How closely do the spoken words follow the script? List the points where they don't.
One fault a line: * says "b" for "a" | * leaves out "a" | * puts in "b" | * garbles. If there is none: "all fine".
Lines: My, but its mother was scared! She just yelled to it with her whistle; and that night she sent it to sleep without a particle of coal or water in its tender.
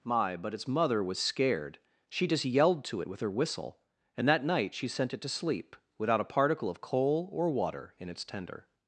all fine